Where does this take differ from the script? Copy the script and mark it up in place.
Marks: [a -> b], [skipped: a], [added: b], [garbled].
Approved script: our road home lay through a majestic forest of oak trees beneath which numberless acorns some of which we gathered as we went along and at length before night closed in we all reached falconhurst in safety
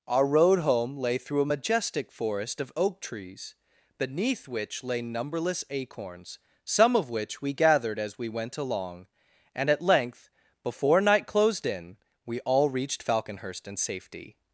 our road home lay through a majestic forest of oak trees beneath which [added: lay] numberless acorns some of which we gathered as we went along and at length before night closed in we all reached falconhurst in safety